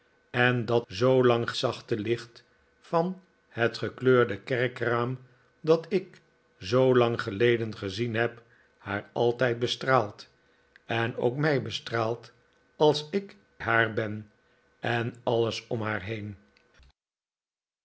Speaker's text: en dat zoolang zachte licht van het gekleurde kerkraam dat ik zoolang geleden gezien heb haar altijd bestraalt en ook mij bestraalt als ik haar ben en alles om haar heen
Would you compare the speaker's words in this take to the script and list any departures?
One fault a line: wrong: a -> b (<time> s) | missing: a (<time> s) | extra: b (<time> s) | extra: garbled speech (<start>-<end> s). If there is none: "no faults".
no faults